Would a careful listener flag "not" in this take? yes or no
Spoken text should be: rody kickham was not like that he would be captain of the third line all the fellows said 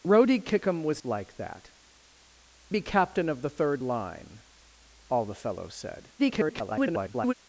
yes